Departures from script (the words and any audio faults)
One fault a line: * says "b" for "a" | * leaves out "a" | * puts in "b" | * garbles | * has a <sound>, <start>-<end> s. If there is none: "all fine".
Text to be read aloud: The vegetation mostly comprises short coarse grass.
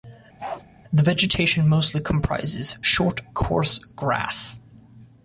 * has a bark, 0.4-0.6 s